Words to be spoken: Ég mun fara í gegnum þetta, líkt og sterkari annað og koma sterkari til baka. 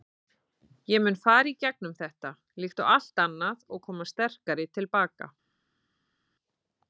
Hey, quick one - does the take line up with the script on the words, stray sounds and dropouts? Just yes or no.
no